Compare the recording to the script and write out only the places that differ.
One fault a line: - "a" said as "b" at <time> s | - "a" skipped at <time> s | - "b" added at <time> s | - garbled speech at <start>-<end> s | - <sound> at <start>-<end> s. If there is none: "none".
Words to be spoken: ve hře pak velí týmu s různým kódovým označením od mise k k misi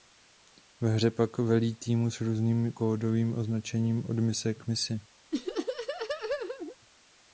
- "k" skipped at 4.7 s
- laugh at 5.3-6.8 s